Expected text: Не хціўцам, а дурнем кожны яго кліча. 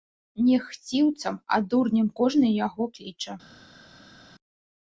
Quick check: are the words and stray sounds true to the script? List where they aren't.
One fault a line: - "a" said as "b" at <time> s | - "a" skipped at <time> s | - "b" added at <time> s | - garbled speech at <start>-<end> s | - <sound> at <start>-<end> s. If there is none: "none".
none